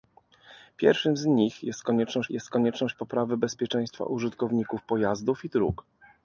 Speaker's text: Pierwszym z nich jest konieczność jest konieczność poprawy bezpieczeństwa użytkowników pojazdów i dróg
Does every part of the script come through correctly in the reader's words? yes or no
yes